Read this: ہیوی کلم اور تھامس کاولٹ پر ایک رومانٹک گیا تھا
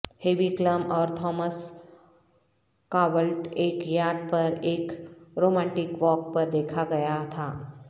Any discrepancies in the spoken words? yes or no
yes